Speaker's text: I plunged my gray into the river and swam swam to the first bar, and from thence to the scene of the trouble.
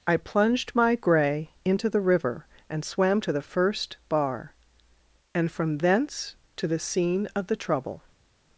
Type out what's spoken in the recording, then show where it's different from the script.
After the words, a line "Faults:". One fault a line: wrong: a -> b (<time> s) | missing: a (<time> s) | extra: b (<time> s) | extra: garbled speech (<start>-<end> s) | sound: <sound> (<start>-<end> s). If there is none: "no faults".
I plunged my gray into the river and swam to the first bar, and from thence to the scene of the trouble.
Faults:
missing: swam (3.2 s)